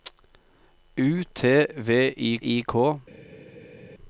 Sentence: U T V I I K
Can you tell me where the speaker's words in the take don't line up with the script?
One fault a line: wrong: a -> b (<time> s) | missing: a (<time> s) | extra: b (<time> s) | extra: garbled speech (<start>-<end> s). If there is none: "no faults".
no faults